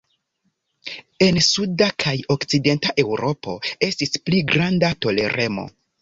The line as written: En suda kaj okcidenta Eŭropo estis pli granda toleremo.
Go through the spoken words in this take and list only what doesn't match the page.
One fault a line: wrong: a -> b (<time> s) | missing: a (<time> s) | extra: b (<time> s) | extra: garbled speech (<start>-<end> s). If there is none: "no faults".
no faults